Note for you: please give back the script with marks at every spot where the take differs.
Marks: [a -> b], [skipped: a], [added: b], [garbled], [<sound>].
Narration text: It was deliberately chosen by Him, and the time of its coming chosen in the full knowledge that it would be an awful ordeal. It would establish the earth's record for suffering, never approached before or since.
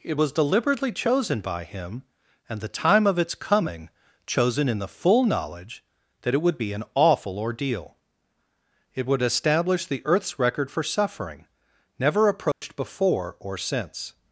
It was deliberately chosen by Him, and the time of its coming chosen in the full knowledge that it would be an awful ordeal. It would establish the earth's record for suffering, never approached [dropout] before or since.